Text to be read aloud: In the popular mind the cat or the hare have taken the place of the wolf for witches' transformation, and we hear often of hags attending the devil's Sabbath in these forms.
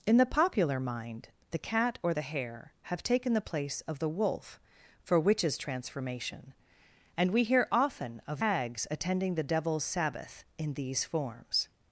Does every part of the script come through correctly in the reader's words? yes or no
yes